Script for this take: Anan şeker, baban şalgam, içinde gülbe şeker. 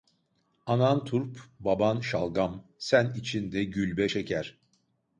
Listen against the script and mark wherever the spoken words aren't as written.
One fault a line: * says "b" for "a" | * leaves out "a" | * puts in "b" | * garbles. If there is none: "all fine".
* says "turp" for "şeker"
* puts in "sen"